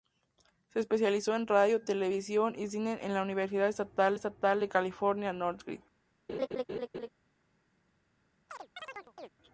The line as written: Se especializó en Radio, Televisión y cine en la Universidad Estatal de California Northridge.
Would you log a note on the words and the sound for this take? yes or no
yes